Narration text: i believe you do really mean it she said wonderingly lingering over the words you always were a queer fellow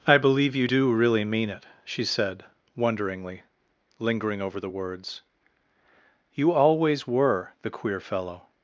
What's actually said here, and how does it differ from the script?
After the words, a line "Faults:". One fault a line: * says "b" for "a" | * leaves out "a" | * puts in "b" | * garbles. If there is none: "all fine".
i believe you do really mean it she said wonderingly lingering over the words you always were the queer fellow
Faults:
* says "the" for "a"